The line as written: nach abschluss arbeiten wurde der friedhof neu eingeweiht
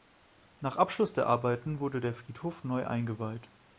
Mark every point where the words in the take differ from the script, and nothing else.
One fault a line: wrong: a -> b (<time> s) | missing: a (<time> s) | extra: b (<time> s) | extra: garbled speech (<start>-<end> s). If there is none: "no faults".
extra: der (1.1 s)